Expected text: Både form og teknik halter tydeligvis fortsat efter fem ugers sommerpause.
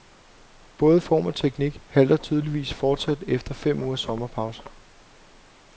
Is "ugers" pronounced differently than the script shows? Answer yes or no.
no